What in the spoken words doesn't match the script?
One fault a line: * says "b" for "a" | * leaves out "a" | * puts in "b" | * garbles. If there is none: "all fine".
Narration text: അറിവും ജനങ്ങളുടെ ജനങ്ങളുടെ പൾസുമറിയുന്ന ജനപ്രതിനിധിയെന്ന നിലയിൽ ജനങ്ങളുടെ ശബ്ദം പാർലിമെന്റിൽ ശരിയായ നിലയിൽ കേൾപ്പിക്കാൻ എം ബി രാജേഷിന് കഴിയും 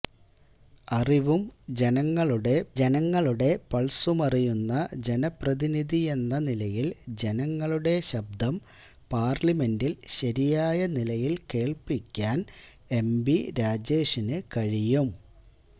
all fine